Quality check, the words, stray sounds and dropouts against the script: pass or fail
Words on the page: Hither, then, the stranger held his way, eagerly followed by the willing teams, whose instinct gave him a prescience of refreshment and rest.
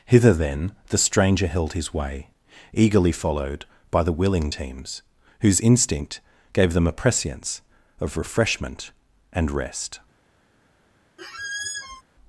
fail